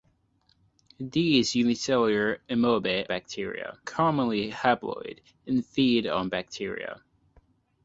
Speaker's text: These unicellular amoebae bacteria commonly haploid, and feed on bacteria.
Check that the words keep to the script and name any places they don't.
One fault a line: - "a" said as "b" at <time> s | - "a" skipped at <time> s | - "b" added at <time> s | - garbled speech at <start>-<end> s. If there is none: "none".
none